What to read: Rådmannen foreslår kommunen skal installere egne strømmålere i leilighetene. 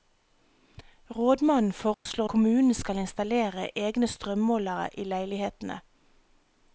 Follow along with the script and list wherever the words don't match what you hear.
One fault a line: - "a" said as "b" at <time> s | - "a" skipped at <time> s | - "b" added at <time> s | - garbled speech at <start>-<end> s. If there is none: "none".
none